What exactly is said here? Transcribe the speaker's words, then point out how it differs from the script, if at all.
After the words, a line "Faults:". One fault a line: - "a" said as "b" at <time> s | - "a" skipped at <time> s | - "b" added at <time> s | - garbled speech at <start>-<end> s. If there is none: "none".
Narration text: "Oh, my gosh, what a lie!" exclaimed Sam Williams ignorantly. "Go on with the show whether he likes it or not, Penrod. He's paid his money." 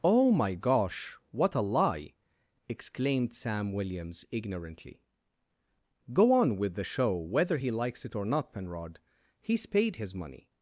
"Oh, my gosh, what a lie!" exclaimed Sam Williams ignorantly. "Go on with the show whether he likes it or not, Penrod. He's paid his money."
Faults:
none